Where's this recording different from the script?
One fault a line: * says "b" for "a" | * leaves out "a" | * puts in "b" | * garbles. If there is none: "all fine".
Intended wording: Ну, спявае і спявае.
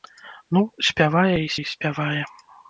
* puts in "і"